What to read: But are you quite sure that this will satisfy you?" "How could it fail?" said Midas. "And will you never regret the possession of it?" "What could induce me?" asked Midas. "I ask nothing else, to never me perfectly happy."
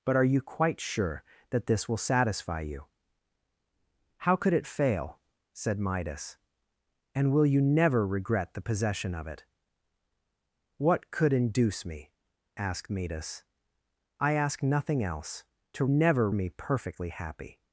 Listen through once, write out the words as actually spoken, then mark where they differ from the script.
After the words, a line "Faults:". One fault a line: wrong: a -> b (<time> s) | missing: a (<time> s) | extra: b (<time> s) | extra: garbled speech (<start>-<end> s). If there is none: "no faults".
But are you quite sure that this will satisfy you?" "How could it fail?" said Midas. "And will you never regret the possession of it?" "What could induce me?" asked Midas. "I ask nothing else, to never me perfectly happy."
Faults:
no faults